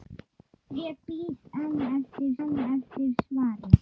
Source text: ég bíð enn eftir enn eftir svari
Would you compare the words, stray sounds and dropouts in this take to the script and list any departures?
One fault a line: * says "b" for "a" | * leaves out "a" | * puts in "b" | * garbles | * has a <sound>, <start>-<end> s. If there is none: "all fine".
all fine